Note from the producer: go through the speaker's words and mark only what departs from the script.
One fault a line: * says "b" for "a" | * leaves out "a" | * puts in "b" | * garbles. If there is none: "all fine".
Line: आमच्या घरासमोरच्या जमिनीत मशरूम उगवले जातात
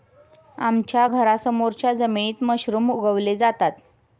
all fine